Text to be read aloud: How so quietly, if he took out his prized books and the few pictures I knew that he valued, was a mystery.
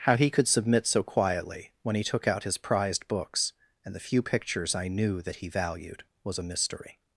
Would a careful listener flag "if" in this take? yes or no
yes